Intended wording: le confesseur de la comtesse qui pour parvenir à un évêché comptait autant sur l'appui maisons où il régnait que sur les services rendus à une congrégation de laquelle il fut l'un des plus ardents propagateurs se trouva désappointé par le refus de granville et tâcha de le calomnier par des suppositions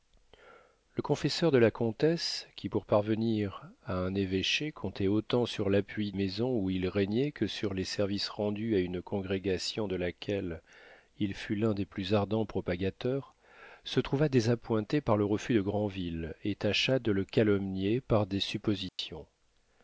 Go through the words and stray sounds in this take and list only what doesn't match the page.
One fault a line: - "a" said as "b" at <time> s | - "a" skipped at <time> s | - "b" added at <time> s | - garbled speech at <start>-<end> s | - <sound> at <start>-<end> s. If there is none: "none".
- dropout at 18.9-19.0 s